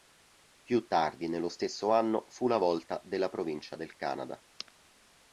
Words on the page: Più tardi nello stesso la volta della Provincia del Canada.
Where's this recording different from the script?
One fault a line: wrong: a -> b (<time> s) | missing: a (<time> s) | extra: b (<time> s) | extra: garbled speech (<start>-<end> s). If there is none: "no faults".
extra: anno fu (1.9 s)